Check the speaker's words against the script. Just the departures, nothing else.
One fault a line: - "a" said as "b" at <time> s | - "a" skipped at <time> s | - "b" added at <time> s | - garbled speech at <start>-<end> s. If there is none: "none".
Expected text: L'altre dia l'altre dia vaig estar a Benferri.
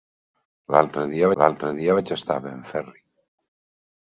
none